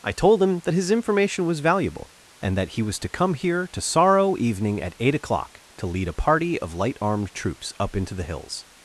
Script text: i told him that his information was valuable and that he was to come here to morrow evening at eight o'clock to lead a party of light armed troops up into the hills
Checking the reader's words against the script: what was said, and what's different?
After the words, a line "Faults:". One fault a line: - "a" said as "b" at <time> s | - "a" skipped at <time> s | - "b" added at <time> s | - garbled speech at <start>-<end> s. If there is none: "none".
i told him that his information was valuable and that he was to come here to sorrow evening at eight o'clock to lead a party of light armed troops up into the hills
Faults:
- "morrow" said as "sorrow" at 3.8 s